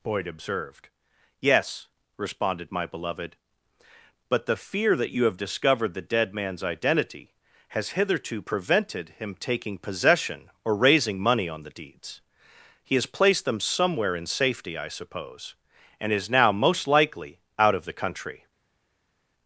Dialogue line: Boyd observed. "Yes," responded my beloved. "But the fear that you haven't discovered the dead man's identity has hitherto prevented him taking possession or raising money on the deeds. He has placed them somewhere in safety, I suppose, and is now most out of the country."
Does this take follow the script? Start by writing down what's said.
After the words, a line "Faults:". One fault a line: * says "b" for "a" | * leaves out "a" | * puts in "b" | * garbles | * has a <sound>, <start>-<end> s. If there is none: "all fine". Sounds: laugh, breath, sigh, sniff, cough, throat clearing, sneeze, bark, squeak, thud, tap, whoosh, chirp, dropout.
Boyd observed. "Yes," responded my beloved. "But the fear that you have discovered the dead man's identity has hitherto prevented him taking possession or raising money on the deeds. He has placed them somewhere in safety, I suppose, and is now most likely out of the country."
Faults:
* says "have" for "haven't"
* puts in "likely"